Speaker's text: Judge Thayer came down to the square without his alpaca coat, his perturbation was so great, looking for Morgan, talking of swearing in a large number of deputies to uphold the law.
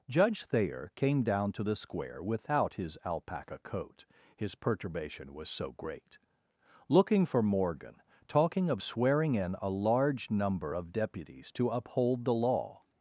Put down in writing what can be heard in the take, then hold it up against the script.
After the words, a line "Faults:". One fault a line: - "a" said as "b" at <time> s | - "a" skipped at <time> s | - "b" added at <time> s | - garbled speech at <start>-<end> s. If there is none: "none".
Judge Thayer came down to the square without his alpaca coat, his perturbation was so great, looking for Morgan, talking of swearing in a large number of deputies to uphold the law.
Faults:
none